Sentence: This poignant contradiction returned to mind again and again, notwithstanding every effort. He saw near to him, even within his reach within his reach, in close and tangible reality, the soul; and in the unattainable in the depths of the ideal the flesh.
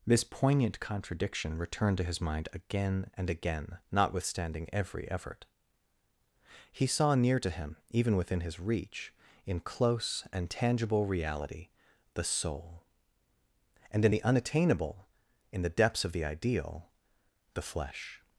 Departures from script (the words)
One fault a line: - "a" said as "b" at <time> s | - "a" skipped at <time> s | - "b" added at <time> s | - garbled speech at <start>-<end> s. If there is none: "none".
- "his" added at 2.0 s
- "within his reach" skipped at 9.1 s